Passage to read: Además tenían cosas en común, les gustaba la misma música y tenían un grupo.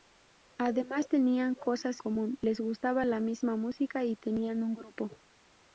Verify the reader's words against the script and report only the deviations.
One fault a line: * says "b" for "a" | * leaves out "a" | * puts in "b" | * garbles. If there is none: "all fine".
* leaves out "en"